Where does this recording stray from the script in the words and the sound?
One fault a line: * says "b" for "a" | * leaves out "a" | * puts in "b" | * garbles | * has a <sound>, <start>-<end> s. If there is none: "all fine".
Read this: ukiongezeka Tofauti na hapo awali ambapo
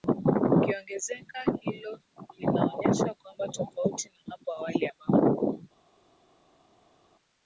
* puts in "Hilo linaonyesha kwamba"